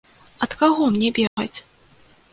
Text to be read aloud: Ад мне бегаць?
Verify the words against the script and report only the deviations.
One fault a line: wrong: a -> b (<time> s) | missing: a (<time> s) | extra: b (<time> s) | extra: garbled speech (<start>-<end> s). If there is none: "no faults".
extra: каго (0.6 s)